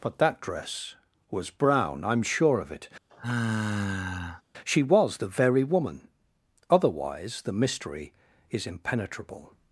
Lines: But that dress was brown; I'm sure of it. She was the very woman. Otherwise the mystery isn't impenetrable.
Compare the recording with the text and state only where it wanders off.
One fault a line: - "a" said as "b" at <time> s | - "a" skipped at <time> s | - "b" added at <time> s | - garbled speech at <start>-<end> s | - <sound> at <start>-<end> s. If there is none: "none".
- sigh at 3.1-4.4 s
- "isn't" said as "is" at 8.5 s